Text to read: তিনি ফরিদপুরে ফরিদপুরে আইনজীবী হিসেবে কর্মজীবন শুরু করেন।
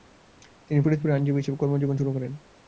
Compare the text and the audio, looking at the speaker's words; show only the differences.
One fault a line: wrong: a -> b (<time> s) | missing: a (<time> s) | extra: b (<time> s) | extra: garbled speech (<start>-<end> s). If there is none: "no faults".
missing: ফরিদপুরে (1.1 s)